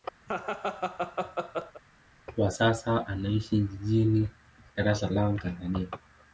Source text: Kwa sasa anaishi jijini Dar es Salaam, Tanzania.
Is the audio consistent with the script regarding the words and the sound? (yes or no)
no